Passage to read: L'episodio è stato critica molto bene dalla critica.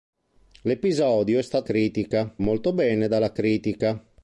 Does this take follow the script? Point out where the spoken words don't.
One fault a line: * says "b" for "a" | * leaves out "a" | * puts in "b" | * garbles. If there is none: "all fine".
all fine